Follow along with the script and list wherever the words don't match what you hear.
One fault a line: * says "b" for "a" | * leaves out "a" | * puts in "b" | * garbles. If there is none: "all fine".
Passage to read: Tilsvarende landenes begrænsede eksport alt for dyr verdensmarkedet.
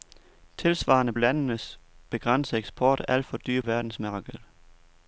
all fine